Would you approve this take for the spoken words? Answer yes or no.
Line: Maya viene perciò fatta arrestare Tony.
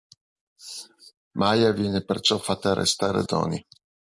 yes